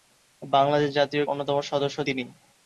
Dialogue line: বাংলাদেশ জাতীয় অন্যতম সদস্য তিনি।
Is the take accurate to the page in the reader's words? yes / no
yes